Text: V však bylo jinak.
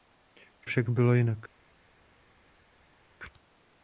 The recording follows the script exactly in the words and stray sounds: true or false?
true